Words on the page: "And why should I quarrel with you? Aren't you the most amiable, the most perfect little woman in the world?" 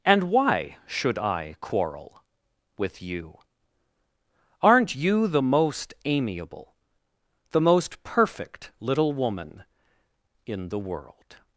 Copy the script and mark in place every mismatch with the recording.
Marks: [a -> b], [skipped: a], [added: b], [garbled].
"And why should I quarrel with you? Aren't you the most amiable, the most perfect little woman in the world?"